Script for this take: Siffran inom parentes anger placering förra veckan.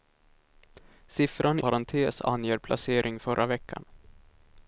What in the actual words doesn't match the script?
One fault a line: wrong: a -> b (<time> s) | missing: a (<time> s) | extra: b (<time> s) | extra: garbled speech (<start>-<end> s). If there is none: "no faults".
missing: inom (1.6 s)